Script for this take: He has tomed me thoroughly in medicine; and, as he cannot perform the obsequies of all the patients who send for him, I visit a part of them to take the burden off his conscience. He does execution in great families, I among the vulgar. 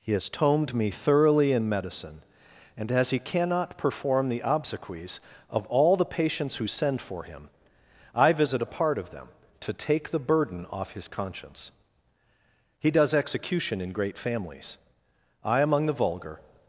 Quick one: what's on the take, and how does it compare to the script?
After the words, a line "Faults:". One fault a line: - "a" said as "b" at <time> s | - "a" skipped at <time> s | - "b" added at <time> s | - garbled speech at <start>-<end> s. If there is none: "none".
He has tomed me thoroughly in medicine; and, as he cannot perform the obsequies of all the patients who send for him, I visit a part of them to take the burden off his conscience. He does execution in great families, I among the vulgar.
Faults:
none